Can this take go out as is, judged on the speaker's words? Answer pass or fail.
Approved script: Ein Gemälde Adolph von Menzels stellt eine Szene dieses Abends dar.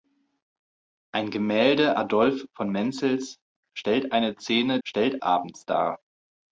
fail